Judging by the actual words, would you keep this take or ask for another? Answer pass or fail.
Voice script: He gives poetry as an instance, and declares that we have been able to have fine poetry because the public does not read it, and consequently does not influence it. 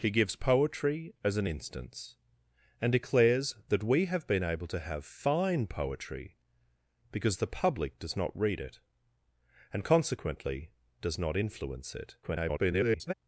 fail